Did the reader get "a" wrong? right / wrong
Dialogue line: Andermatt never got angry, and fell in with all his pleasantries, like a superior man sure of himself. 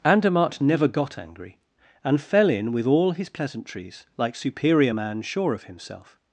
wrong